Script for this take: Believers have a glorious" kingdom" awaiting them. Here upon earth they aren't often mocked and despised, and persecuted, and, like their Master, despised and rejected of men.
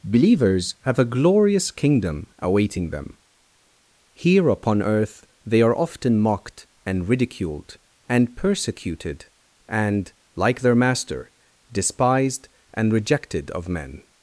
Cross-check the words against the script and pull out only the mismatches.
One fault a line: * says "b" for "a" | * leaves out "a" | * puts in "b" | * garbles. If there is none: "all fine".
* says "are" for "aren't"
* says "ridiculed" for "despised"